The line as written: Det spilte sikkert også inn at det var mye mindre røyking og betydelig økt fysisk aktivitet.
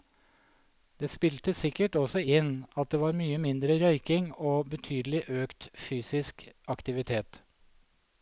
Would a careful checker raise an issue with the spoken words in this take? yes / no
no